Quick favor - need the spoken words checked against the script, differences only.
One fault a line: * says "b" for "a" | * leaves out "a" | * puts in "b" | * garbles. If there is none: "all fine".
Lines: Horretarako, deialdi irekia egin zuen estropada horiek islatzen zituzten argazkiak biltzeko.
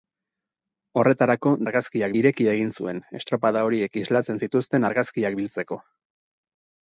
* says "argazkiak" for "deialdi"